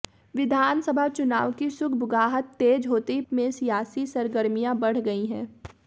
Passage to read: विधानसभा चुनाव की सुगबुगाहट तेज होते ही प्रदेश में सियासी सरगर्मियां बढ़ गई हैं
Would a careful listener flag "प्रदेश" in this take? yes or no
yes